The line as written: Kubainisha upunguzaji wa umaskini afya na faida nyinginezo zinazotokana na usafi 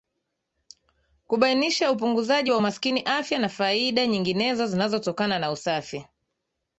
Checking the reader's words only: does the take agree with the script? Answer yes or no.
yes